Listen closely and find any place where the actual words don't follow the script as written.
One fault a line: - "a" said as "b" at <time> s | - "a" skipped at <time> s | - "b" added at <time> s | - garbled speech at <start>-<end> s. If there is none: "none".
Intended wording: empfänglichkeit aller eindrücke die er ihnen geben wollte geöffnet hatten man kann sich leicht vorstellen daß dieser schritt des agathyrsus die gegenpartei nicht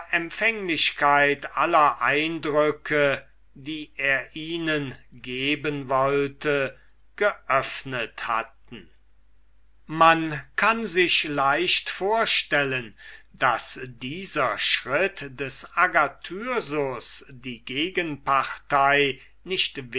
none